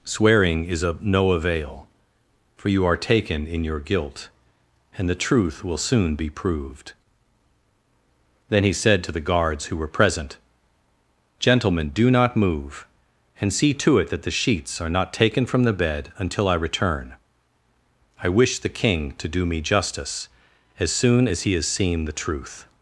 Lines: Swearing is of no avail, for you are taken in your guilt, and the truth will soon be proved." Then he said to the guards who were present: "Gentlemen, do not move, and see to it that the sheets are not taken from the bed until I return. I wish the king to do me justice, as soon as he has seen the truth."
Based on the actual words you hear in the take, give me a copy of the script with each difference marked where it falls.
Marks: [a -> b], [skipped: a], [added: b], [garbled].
Swearing is of no avail, for you are taken in your guilt, and the truth will soon be proved." Then he said to the guards who were present: "Gentlemen, do not move, and see to it that the sheets are not taken from the bed until I return. I wish the king to do me justice, as soon as he has seen the truth."